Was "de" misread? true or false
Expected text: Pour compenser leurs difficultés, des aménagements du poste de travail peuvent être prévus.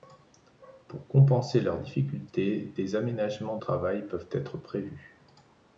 true